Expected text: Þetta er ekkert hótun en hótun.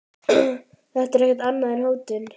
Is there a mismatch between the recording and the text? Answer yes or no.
yes